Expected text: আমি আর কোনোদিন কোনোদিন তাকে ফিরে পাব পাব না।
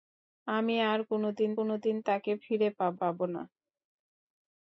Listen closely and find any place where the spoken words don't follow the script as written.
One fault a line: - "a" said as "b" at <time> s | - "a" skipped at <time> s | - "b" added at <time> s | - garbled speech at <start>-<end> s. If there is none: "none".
none